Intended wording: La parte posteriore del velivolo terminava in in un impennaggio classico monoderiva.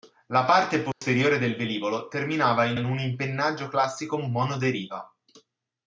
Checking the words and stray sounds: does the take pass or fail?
fail